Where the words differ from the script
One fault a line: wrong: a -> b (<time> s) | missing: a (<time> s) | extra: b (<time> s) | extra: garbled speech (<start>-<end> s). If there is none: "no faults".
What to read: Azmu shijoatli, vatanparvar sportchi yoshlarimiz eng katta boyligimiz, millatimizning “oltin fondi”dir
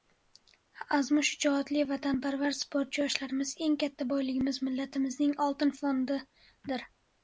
no faults